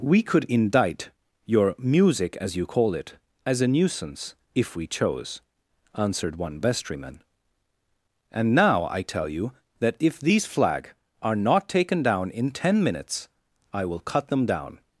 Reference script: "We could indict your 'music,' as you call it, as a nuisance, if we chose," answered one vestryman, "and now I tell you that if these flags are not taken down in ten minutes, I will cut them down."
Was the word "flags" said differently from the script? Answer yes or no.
yes